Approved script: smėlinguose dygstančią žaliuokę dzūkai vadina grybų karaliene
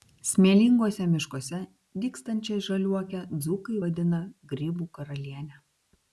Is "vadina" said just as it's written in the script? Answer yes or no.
yes